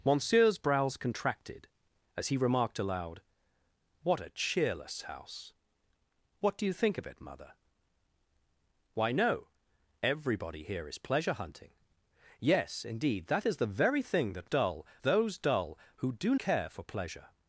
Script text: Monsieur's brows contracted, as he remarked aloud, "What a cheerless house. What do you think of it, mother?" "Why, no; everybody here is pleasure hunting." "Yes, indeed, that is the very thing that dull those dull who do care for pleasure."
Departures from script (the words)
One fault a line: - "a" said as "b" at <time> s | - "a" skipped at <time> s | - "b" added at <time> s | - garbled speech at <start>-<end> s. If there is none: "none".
none